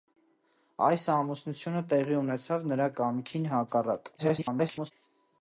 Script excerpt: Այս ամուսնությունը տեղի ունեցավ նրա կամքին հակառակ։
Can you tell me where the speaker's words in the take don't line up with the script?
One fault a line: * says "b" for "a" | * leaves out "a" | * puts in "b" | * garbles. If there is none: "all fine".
* garbles